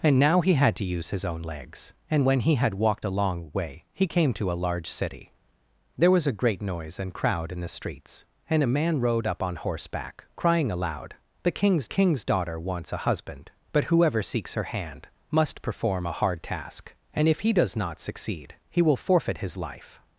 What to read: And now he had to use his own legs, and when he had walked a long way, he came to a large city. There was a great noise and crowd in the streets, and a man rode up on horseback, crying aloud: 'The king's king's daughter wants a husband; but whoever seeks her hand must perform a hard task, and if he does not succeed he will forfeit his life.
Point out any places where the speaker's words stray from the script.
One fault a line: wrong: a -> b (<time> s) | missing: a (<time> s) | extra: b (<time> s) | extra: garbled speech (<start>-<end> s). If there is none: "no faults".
no faults